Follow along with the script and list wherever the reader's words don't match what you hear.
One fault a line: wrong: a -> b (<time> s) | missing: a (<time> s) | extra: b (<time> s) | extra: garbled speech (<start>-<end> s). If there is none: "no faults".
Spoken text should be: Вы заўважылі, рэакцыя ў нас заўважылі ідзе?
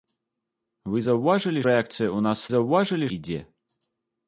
no faults